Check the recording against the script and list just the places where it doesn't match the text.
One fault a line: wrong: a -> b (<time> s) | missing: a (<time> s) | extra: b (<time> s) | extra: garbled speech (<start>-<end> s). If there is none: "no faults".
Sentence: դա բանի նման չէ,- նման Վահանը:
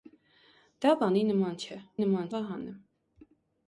no faults